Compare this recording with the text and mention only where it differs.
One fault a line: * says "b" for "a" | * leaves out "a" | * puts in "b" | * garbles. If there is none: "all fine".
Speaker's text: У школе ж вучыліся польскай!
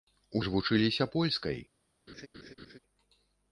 * leaves out "школе"